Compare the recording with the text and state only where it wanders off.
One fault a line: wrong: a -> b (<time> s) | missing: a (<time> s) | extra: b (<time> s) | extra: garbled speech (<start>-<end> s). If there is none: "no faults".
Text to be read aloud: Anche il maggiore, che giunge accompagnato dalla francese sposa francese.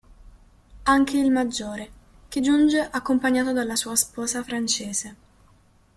wrong: francese -> sua (3.7 s)